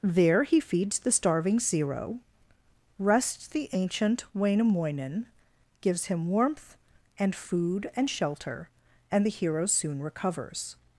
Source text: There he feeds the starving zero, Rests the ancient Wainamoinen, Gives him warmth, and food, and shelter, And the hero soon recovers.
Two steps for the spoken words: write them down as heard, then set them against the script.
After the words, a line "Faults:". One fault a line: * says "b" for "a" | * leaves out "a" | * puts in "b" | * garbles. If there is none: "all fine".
There he feeds the starving zero, Rests the ancient Wainamoinen, Gives him warmth, and food, and shelter, And the hero soon recovers.
Faults:
all fine